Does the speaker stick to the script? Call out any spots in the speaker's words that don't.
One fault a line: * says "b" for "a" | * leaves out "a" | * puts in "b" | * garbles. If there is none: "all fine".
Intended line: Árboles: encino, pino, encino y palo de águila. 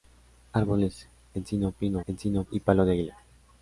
all fine